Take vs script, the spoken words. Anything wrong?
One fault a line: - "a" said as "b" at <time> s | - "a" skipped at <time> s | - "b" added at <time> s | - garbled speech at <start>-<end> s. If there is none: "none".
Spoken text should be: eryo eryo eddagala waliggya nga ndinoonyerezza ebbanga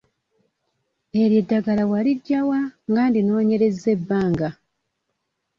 - "eryo" skipped at 1.4 s
- "wa" added at 2.5 s